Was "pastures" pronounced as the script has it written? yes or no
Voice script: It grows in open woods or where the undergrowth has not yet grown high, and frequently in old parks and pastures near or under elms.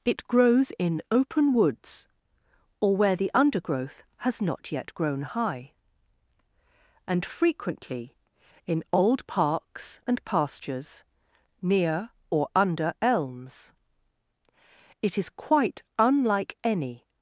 yes